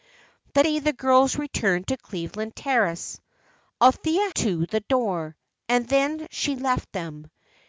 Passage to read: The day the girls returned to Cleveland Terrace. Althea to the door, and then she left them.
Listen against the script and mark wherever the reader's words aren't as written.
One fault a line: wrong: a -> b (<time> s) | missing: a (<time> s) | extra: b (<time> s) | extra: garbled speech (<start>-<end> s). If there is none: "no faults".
no faults